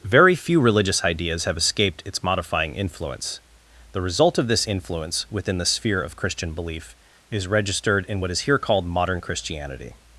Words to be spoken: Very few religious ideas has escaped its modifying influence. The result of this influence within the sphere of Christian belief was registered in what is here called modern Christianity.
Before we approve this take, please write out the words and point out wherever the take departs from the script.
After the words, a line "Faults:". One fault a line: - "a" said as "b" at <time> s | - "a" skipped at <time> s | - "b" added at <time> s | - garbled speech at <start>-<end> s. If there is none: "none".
Very few religious ideas have escaped its modifying influence. The result of this influence within the sphere of Christian belief is registered in what is here called modern Christianity.
Faults:
- "has" said as "have" at 1.4 s
- "was" said as "is" at 7.3 s